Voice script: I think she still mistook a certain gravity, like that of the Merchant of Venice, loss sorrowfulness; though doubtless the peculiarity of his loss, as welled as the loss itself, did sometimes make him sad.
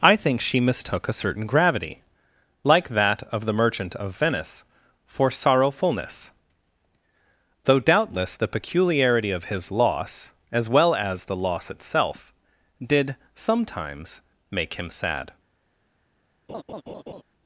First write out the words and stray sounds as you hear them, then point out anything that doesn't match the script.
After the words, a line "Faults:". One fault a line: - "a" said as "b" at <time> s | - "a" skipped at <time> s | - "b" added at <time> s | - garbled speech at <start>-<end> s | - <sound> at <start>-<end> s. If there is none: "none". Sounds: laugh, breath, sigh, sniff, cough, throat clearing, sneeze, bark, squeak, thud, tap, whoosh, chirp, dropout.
I think she mistook a certain gravity, like that of the Merchant of Venice, for sorrowfulness; though doubtless the peculiarity of his loss, as well as the loss itself, did sometimes make him sad.
Faults:
- "still" skipped at 0.6 s
- "loss" said as "for" at 5.0 s
- "welled" said as "well" at 10.7 s
- laugh at 16.5-17.2 s